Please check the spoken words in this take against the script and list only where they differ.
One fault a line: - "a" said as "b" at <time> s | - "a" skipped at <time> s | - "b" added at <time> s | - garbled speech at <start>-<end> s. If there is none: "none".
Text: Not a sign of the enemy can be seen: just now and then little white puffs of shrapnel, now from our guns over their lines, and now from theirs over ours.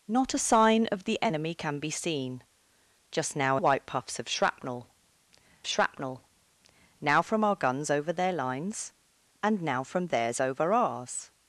- "and then little" skipped at 3.6 s
- "shrapnel" added at 5.7 s